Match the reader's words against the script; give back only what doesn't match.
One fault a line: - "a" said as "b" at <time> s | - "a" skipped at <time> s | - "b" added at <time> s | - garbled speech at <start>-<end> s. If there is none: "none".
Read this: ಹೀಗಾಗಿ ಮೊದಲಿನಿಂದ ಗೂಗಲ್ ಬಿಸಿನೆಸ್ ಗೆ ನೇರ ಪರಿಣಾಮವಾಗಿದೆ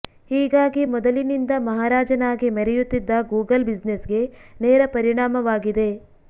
- "ಮಹಾರಾಜನಾಗಿ ಮೆರೆಯುತ್ತಿದ್ದ" added at 1.7 s